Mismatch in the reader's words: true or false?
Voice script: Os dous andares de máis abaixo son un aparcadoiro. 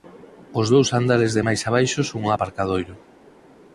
false